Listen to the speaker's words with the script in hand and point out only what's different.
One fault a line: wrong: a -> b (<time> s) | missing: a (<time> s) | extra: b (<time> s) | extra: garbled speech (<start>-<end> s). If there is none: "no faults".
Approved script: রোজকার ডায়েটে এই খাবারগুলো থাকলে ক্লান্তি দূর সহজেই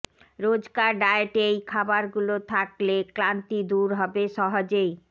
extra: হবে (4.0 s)